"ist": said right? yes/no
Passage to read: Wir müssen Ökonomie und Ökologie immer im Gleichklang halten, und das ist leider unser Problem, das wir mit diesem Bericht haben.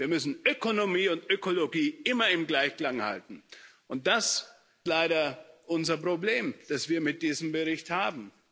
no